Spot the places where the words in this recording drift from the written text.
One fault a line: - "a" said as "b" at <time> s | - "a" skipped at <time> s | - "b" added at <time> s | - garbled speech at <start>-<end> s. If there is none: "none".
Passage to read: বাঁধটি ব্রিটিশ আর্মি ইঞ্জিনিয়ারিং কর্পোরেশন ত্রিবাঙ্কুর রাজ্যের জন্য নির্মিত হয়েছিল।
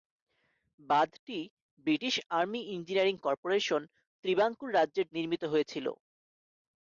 - "জন্য" skipped at 5.1 s